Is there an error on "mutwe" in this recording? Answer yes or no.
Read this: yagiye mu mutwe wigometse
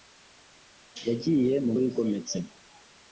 yes